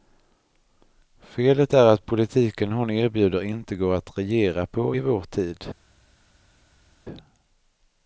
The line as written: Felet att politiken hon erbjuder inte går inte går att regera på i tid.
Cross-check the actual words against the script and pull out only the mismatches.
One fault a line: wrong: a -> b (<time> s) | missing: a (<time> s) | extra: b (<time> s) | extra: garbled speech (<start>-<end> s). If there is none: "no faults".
extra: är (1.7 s)
missing: inte går (3.9 s)
extra: vår (5.0 s)